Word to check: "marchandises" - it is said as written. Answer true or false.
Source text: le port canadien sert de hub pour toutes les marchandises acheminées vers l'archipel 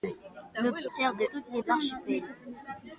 false